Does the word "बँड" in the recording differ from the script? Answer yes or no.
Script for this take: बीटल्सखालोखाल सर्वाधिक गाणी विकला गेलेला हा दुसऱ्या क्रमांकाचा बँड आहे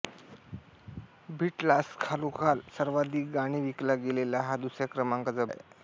yes